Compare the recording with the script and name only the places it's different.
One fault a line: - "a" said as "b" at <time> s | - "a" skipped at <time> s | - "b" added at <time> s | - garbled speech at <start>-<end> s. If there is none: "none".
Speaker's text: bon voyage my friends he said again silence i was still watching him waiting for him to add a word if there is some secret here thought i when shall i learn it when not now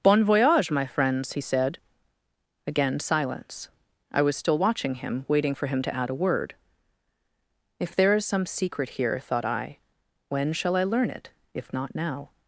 - "when" said as "if" at 11.5 s